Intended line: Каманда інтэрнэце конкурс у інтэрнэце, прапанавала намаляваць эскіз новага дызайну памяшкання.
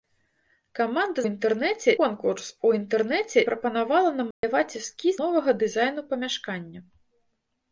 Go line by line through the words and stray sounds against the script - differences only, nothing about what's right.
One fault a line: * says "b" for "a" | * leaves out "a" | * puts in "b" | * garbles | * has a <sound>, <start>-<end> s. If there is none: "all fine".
* has a dropout, 4.3-4.4 s